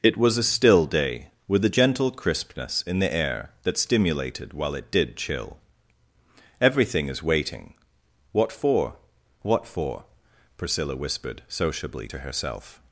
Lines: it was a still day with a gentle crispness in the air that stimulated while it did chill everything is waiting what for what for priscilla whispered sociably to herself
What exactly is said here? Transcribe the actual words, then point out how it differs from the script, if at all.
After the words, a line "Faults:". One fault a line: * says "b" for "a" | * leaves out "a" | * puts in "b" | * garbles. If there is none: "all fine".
it was a still day with a gentle crispness in the air that stimulated while it did chill everything is waiting what for what for priscilla whispered sociably to herself
Faults:
all fine